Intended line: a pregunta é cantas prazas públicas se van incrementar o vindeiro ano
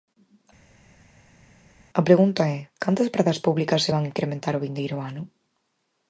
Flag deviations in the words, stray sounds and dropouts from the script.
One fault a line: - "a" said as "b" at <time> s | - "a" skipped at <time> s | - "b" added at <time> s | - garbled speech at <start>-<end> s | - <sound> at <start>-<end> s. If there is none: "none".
none